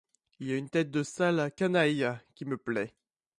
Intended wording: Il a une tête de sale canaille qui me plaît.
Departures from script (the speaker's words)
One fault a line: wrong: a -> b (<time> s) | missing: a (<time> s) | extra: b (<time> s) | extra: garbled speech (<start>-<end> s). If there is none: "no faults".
no faults